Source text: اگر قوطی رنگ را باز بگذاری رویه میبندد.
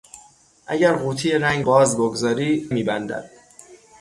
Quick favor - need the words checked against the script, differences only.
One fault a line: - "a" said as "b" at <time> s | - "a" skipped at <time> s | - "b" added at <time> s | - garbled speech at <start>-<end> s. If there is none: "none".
- "را" skipped at 1.6 s
- "رویه" skipped at 2.7 s